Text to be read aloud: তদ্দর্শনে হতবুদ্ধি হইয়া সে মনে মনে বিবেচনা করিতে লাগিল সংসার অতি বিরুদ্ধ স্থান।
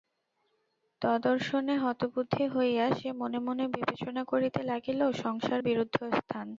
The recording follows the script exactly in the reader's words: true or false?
false